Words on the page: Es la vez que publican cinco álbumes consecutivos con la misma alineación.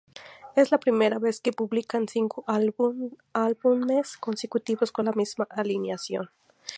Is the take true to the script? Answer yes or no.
no